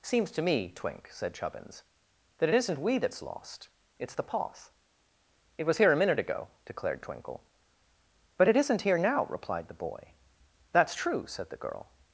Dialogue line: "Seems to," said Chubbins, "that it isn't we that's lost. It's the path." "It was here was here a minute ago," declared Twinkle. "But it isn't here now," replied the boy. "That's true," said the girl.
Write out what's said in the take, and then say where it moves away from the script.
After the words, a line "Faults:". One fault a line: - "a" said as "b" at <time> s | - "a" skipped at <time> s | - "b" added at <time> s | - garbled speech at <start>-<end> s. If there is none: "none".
"Seems to me, Twink," said Chubbins, "that it isn't we that's lost. It's the path." "It was here a minute ago," declared Twinkle. "But it isn't here now," replied the boy. "That's true," said the girl.
Faults:
- "me Twink" added at 0.4 s
- "was here" skipped at 5.9 s